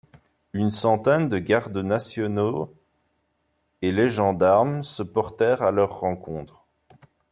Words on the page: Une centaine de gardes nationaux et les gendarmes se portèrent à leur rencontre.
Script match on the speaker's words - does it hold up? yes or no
yes